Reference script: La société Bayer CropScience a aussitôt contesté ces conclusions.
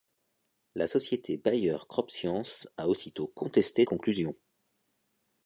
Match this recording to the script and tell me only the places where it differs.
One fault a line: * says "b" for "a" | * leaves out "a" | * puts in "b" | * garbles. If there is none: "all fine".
* leaves out "ces"